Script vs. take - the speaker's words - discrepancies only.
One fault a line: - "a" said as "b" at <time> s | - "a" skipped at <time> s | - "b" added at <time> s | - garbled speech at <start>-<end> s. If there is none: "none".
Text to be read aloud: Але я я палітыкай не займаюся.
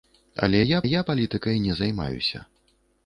none